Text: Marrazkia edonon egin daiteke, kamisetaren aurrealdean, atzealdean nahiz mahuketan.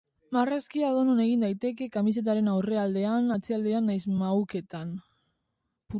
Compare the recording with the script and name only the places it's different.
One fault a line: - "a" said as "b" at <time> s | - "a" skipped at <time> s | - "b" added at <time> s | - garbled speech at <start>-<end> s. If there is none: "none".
none